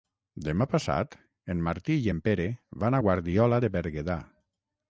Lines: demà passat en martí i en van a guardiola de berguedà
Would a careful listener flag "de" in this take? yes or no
no